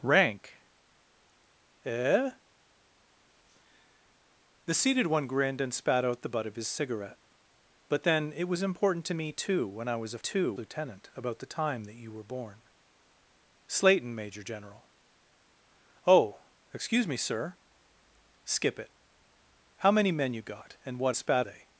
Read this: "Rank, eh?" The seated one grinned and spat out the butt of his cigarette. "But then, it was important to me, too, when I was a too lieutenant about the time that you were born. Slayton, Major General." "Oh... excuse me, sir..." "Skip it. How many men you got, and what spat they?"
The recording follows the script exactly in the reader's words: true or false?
true